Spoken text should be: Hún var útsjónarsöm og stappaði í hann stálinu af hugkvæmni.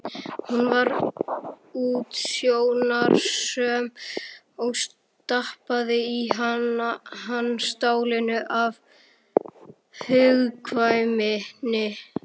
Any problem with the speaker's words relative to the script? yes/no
no